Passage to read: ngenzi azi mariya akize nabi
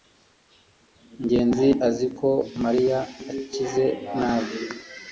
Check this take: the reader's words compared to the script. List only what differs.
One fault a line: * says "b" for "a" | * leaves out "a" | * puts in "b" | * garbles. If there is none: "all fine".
* puts in "ko"